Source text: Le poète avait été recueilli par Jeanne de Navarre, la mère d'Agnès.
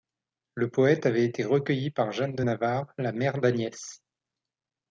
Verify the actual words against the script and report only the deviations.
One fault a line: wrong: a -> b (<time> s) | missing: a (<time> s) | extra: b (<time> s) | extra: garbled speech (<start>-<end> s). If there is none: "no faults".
no faults